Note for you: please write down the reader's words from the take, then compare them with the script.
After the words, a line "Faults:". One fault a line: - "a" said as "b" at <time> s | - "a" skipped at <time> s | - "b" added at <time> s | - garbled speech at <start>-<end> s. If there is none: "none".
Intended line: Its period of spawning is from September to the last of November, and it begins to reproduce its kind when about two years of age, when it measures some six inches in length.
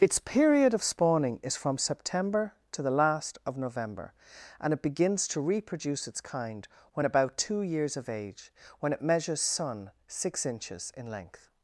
Its period of spawning is from September to the last of November, and it begins to reproduce its kind when about two years of age, when it measures sun six inches in length.
Faults:
- "some" said as "sun" at 9.4 s